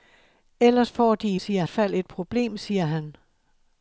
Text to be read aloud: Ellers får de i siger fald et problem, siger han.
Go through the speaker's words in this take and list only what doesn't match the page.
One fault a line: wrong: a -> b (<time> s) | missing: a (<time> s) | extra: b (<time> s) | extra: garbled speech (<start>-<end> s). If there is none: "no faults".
no faults